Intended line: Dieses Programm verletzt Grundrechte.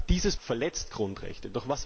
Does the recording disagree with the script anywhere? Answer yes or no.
yes